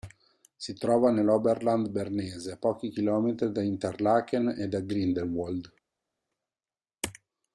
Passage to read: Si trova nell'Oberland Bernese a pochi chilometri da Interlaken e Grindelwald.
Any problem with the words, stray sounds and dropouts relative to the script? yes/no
yes